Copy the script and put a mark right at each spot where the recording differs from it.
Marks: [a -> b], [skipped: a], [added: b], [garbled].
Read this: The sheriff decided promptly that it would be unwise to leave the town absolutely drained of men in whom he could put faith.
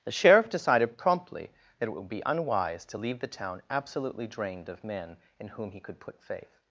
The sheriff decided promptly that it would be unwise to leave the town absolutely drained of men in whom he could put faith.